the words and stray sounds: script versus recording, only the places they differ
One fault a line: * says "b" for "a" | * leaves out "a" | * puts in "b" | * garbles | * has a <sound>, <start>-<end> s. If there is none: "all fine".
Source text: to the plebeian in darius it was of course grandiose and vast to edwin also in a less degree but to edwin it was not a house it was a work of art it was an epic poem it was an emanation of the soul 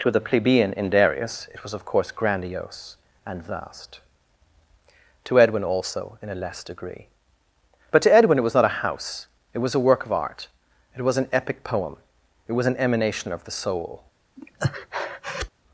* has a breath, 14.4-15.5 s